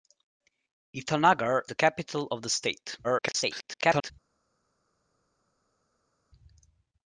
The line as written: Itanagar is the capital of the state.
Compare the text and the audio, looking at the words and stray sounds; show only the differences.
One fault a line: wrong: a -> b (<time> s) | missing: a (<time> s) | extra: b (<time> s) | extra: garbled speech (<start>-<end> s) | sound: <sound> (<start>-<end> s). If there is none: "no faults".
missing: is (1.6 s)
extra: garbled speech (3.0-4.1 s)